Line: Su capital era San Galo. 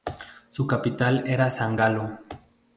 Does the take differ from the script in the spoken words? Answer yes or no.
no